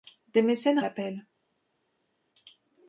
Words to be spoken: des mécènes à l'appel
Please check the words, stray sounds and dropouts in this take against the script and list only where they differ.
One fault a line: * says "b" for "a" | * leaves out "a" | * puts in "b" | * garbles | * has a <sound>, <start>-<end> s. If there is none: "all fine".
all fine